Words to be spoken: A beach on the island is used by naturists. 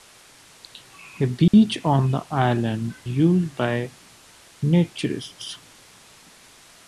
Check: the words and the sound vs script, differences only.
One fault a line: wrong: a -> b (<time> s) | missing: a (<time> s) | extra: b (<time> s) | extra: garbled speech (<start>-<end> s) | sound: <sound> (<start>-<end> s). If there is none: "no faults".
sound: dropout (1.5-1.5 s)
missing: is (3.0 s)